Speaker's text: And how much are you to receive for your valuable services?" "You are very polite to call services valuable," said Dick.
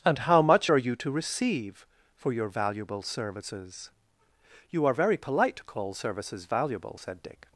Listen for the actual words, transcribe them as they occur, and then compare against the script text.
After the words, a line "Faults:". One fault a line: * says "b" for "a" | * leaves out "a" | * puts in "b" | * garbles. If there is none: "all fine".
And how much are you to receive for your valuable services?" "You are very polite to call services valuable," said Dick.
Faults:
all fine